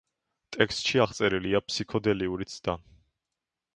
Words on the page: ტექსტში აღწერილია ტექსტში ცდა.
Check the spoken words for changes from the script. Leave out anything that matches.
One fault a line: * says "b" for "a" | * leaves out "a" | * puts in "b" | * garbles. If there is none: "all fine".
* says "ფსიქოდელიური" for "ტექსტში"